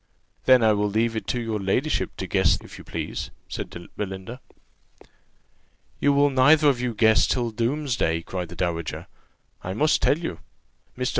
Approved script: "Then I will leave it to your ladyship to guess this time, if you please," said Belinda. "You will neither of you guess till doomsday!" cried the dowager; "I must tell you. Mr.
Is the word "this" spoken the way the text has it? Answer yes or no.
no